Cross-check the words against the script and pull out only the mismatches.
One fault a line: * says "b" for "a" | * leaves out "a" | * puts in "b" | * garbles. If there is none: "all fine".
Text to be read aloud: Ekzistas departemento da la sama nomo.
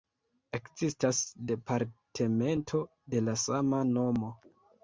* says "de" for "da"